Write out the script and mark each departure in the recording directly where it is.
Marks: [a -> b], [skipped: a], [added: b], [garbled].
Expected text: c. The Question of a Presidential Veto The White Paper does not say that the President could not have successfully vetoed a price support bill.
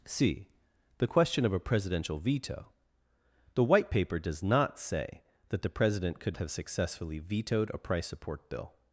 c. The Question of a Presidential Veto The White Paper does not say that the President could [skipped: not] have successfully vetoed a price support bill.